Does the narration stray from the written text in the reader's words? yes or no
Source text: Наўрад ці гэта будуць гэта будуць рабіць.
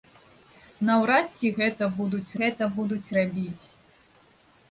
no